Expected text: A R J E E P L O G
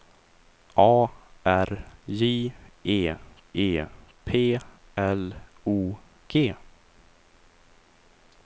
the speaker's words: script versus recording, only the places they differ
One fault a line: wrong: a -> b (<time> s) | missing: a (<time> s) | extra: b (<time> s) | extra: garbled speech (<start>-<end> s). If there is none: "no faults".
no faults